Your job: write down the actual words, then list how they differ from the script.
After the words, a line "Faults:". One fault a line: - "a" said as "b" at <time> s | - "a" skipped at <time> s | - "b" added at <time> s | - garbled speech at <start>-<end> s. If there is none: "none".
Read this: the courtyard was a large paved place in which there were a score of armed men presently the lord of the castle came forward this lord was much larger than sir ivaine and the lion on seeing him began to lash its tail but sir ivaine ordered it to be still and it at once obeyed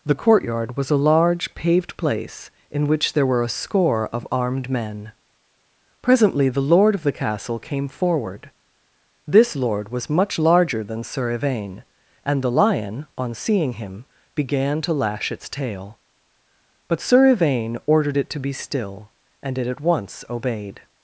the courtyard was a large paved place in which there were a score of armed men presently the lord of the castle came forward this lord was much larger than sir ivaine and the lion on seeing him began to lash its tail but sir ivaine ordered it to be still and it at once obeyed
Faults:
none